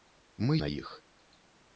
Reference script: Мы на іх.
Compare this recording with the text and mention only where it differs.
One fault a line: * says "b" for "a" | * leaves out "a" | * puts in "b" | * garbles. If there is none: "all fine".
all fine